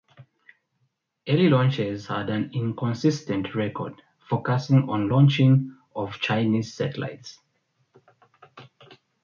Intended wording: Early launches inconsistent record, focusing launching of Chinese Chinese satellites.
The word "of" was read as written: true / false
true